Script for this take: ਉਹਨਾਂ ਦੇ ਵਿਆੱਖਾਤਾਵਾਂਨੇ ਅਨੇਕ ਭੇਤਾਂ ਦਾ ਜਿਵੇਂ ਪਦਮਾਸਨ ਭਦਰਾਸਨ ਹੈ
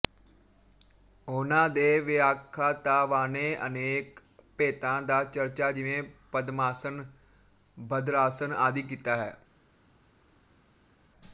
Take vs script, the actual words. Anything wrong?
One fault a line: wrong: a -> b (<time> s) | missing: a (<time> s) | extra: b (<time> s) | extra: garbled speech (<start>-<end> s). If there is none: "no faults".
extra: ਚਰਚਾ (5.2 s)
extra: ਆਦਿ ਕੀਤਾ (8.6 s)